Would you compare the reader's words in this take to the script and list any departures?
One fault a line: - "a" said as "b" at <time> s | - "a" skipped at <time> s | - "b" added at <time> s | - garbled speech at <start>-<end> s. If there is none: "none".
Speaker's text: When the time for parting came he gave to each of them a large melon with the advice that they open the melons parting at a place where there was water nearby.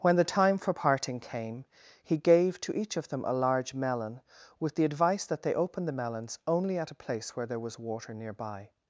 - "parting" said as "only" at 6.5 s